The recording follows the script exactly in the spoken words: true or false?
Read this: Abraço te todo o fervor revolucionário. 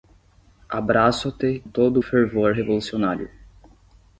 true